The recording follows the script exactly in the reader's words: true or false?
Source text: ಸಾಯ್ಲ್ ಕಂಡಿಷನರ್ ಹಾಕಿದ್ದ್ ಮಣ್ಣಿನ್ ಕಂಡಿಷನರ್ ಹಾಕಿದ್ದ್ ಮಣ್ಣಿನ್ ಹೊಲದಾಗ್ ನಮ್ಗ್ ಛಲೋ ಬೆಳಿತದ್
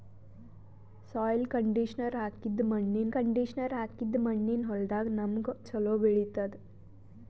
true